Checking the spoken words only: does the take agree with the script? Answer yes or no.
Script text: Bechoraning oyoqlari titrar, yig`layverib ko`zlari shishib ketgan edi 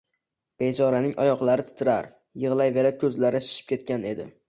yes